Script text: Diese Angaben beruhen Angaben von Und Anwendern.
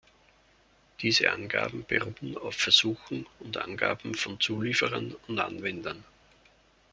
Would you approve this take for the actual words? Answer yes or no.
no